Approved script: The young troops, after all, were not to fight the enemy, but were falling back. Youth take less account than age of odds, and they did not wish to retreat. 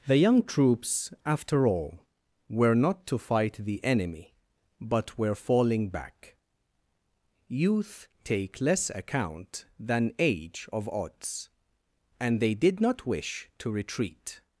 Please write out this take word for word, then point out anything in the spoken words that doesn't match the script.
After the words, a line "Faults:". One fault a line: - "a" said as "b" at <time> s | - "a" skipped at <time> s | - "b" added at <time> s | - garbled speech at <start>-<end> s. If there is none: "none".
The young troops, after all, were not to fight the enemy, but were falling back. Youth take less account than age of odds, and they did not wish to retreat.
Faults:
none